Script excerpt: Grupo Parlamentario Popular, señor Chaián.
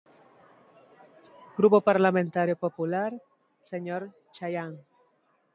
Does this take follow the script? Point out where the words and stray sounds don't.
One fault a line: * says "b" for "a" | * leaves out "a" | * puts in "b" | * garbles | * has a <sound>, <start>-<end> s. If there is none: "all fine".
all fine